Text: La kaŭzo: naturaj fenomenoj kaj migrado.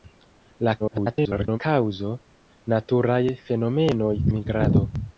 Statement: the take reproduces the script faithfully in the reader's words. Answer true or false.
false